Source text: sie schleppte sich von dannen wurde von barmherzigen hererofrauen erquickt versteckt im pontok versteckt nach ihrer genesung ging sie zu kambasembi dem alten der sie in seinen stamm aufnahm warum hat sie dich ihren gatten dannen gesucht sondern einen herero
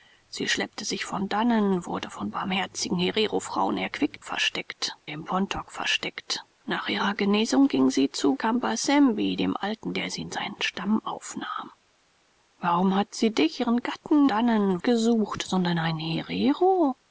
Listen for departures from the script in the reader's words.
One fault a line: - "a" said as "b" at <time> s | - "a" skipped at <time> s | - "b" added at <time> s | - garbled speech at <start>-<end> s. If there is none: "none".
none